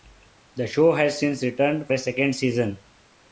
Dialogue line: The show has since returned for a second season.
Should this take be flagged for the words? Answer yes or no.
yes